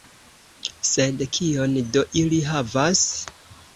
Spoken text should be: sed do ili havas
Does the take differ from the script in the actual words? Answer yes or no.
yes